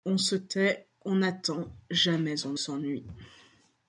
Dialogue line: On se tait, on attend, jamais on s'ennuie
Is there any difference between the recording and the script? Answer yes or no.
no